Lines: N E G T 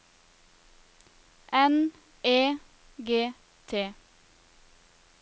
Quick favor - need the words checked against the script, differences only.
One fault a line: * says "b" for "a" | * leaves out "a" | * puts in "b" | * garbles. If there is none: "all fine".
all fine